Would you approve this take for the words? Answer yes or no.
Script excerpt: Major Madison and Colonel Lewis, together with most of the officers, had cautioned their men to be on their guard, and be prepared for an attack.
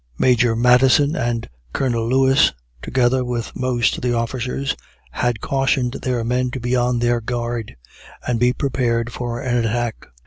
yes